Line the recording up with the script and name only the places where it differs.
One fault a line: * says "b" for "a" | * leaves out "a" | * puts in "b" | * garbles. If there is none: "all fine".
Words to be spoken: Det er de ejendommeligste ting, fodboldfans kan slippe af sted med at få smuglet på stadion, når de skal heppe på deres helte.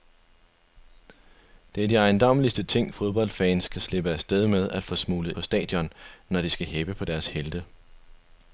all fine